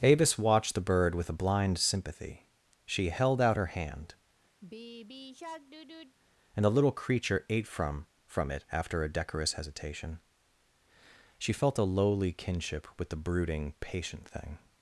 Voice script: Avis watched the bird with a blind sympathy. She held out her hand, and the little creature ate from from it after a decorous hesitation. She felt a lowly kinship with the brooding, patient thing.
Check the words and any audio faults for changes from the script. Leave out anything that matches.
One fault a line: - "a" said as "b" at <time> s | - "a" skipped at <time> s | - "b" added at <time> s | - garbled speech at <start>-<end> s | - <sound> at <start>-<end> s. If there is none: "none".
- sigh at 4.6-6.2 s